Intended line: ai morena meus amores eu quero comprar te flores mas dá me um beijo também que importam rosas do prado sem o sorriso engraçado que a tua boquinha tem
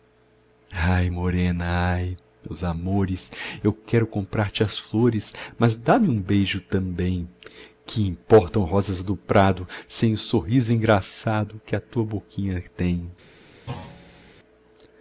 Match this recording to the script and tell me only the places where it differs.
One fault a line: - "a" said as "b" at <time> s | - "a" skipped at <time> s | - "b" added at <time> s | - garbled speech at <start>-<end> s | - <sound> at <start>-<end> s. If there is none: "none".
- "ai" added at 1.9 s
- "as" added at 4.6 s
- thud at 13.7-14.3 s